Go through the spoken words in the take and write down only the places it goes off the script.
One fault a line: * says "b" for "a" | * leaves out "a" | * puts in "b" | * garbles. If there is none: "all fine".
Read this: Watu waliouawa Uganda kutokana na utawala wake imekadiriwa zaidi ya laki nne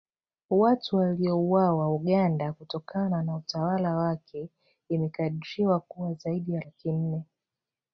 * puts in "kuwa"